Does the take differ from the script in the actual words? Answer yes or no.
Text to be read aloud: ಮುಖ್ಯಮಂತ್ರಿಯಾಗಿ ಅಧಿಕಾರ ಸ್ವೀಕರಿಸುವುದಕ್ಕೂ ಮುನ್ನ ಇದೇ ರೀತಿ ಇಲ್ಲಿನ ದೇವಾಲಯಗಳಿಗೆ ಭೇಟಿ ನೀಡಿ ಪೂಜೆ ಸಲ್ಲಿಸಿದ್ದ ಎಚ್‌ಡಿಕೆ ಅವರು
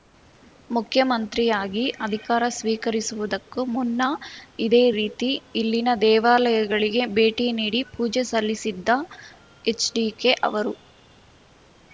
no